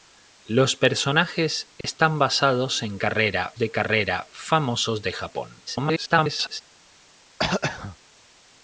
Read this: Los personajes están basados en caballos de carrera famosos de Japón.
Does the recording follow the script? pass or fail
fail